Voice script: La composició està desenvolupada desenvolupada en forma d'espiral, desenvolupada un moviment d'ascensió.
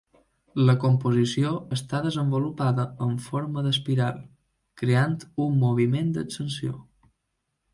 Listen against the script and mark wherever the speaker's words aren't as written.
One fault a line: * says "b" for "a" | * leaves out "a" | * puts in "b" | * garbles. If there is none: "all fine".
* leaves out "desenvolupada"
* says "creant" for "desenvolupada"